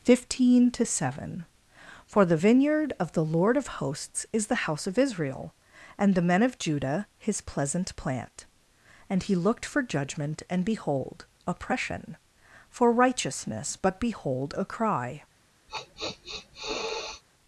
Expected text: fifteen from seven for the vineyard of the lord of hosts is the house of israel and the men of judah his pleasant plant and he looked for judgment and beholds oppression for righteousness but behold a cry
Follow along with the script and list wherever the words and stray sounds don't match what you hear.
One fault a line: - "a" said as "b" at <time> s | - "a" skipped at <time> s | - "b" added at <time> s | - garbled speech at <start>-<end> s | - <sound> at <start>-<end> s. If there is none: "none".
- "from" said as "to" at 0.7 s
- "beholds" said as "behold" at 10.6 s
- sniff at 15.7-17.2 s